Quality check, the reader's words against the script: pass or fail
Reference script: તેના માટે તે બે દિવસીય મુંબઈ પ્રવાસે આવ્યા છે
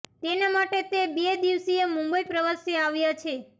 pass